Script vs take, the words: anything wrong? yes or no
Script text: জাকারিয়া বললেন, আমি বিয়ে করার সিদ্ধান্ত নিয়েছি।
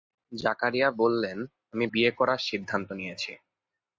no